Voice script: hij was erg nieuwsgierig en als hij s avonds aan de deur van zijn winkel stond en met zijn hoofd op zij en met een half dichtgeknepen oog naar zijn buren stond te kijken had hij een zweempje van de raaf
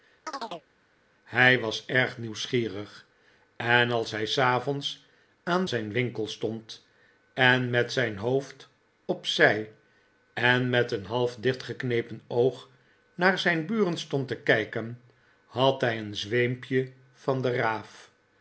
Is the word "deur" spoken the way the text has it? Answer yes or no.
no